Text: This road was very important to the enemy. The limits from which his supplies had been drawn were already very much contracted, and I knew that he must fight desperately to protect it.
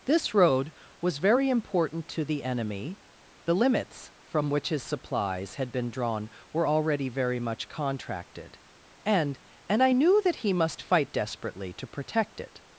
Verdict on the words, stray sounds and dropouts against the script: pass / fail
fail